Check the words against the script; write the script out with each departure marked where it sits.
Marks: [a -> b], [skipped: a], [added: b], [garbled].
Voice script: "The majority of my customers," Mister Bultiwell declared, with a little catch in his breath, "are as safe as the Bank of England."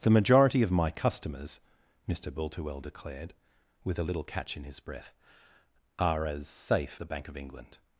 "The majority of my customers," Mister Bultiwell declared, with a little catch in his breath, "are as safe [skipped: as] the Bank of England."